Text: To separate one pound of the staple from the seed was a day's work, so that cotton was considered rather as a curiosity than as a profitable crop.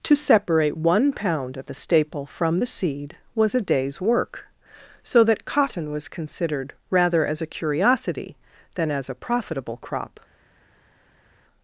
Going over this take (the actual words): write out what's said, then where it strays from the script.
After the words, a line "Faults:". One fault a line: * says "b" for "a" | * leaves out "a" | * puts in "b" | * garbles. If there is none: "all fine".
To separate one pound of the staple from the seed was a day's work, so that cotton was considered rather as a curiosity than as a profitable crop.
Faults:
all fine